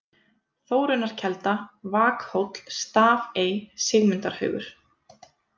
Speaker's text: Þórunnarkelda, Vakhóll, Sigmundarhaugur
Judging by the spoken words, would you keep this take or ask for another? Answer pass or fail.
fail